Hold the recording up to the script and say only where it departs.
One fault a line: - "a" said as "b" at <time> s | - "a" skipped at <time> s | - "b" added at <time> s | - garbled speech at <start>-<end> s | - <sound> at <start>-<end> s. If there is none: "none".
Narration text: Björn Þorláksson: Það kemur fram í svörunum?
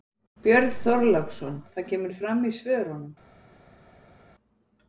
none